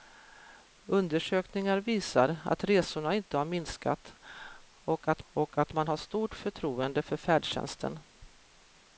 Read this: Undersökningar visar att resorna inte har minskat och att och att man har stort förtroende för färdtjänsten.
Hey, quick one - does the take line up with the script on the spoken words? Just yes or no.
yes